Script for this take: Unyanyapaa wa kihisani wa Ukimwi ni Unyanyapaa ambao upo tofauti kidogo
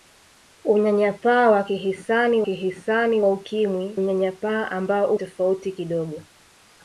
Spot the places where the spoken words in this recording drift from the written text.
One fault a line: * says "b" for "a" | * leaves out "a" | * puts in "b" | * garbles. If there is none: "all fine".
* puts in "kihisani"
* leaves out "ni"
* leaves out "upo"